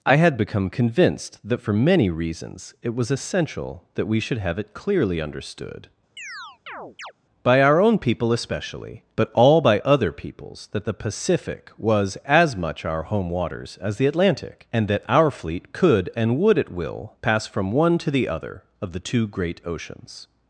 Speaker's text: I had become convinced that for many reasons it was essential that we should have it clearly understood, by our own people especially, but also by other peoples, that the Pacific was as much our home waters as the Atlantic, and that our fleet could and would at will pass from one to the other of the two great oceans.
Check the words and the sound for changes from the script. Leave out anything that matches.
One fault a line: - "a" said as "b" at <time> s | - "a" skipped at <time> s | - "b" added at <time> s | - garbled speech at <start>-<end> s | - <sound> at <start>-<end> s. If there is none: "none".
- chirp at 6.2-7.1 s
- "also" said as "all" at 9.3 s